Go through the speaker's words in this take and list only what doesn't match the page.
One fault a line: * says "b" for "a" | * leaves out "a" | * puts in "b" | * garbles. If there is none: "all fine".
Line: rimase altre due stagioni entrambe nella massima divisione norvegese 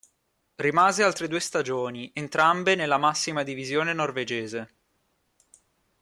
all fine